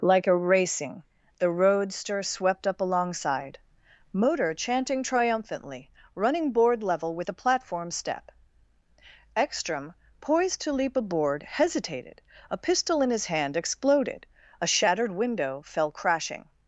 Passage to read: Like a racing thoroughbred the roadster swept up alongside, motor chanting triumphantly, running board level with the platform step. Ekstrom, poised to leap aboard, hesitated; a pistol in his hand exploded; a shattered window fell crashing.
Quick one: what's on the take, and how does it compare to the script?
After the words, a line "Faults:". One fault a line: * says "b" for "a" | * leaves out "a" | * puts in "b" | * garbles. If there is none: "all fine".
Like a racing the roadster swept up alongside, motor chanting triumphantly, running board level with the platform step. Ekstrom, poised to leap aboard, hesitated; a pistol in his hand exploded; a shattered window fell crashing.
Faults:
* leaves out "thoroughbred"